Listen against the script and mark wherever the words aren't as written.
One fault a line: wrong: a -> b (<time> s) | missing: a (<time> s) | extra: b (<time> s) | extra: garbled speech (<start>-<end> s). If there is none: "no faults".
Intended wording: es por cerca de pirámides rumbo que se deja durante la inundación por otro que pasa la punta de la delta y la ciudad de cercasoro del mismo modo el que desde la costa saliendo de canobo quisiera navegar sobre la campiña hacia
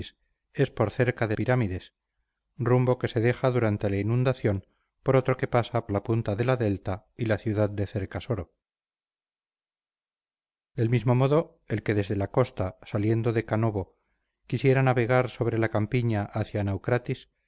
no faults